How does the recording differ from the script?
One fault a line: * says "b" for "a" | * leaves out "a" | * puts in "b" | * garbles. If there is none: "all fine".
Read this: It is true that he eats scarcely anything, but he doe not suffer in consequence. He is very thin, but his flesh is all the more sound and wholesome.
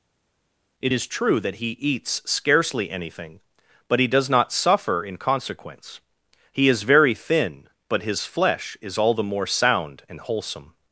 * says "does" for "doe"